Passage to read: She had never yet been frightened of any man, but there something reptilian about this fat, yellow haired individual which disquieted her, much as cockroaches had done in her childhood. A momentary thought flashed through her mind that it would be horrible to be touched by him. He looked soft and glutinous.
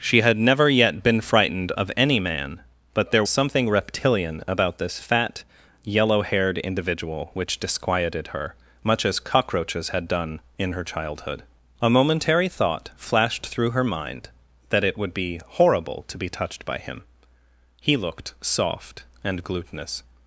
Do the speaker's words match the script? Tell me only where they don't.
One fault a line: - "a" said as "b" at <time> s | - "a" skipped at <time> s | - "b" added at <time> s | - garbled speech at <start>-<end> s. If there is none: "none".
none